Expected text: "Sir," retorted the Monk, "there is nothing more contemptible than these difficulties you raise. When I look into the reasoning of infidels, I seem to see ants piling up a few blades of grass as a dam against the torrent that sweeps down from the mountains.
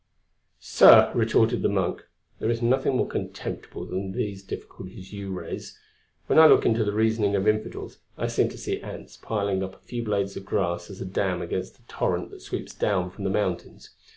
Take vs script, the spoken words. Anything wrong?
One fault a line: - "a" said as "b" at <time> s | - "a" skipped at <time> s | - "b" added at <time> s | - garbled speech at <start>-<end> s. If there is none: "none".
none